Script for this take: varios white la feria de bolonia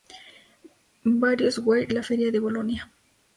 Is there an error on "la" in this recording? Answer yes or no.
no